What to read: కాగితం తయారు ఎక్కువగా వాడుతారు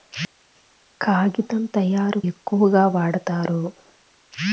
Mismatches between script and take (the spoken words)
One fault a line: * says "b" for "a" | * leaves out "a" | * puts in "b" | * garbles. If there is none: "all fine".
all fine